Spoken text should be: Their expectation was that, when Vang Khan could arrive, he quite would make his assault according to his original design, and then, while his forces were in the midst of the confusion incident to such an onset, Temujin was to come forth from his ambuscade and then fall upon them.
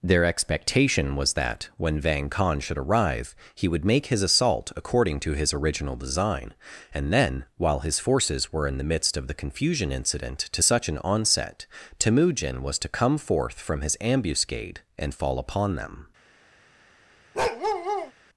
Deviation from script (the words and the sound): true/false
true